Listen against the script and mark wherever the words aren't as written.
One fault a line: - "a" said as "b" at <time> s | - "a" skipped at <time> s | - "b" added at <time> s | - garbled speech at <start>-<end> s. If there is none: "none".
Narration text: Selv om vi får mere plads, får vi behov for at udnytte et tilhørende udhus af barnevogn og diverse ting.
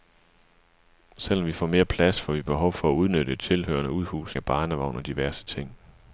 none